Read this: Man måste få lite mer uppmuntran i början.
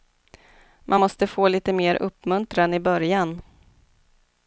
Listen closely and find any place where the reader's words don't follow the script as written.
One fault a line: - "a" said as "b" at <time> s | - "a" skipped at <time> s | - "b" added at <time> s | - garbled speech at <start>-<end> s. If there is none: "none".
none